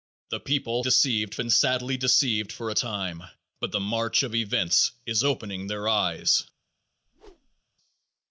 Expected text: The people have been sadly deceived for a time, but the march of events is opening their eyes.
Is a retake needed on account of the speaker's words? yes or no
yes